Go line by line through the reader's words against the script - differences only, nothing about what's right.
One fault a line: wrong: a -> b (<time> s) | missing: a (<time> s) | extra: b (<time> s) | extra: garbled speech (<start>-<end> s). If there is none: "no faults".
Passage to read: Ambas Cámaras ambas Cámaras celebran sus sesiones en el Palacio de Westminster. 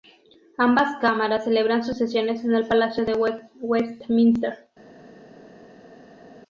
missing: ambas Cámaras (1.4 s)